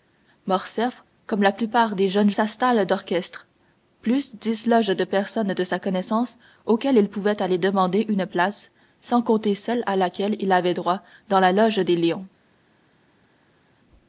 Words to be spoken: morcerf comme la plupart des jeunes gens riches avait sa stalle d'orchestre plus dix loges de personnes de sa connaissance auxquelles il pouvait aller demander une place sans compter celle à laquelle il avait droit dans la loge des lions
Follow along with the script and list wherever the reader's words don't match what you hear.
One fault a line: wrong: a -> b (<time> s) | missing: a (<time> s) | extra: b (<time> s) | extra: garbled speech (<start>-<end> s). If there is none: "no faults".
missing: gens riches avait (2.3 s)